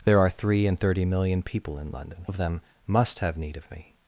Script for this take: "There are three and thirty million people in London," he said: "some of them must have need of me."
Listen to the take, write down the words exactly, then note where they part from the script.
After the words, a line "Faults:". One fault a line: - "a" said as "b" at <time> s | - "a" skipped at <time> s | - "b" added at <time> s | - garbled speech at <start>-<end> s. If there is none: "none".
"There are three and thirty million people in London," of them must have need of me."
Faults:
- "he said some" skipped at 2.3 s